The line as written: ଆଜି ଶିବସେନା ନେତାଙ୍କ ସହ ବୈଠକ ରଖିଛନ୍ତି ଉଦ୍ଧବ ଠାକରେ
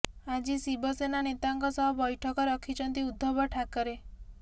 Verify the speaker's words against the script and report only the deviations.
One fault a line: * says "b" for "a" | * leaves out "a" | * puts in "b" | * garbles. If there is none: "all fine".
all fine